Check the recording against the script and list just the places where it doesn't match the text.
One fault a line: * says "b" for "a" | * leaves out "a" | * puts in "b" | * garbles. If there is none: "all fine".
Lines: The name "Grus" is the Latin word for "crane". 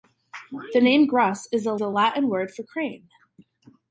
* puts in "the"